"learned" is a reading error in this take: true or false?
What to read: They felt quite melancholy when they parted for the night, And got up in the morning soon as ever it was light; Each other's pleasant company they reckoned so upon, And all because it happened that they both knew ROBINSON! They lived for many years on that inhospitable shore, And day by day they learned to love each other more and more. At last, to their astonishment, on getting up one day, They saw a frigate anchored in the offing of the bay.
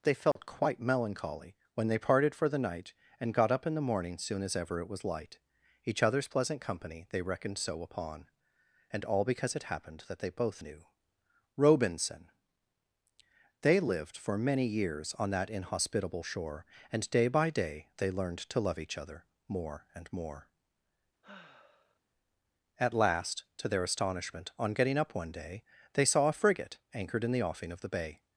false